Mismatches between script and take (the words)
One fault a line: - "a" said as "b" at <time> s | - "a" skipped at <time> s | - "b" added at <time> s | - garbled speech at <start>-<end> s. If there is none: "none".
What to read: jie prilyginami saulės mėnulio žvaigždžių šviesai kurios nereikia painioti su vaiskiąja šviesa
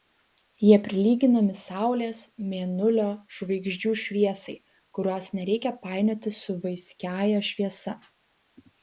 none